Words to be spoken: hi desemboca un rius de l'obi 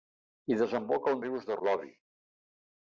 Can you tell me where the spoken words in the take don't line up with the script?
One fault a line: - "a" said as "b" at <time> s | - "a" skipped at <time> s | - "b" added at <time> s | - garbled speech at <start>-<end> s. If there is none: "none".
none